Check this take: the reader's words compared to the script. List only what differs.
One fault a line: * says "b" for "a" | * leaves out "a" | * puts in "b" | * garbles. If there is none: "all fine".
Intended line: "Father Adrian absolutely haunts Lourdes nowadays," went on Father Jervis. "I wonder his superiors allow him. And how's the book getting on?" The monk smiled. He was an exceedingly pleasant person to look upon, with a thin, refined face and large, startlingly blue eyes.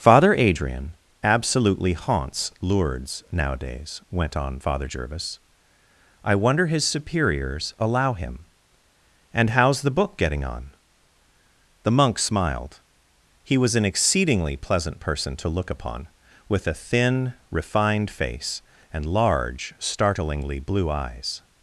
all fine